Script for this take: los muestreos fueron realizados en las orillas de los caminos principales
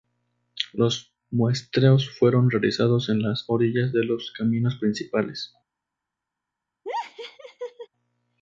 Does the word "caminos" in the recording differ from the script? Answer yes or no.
no